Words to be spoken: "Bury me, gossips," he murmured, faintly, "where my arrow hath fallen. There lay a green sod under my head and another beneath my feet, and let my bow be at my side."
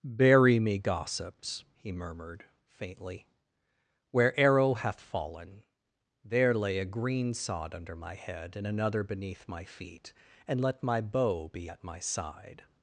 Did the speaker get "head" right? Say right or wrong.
right